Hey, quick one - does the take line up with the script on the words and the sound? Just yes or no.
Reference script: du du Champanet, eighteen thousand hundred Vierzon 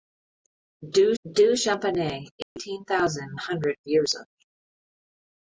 no